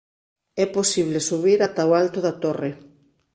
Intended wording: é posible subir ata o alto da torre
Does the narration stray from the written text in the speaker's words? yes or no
no